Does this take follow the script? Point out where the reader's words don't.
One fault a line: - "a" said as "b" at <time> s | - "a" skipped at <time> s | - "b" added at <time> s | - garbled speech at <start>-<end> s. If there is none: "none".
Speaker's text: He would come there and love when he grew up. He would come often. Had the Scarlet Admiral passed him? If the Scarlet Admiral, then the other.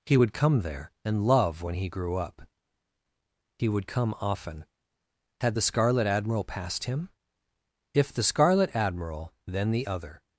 none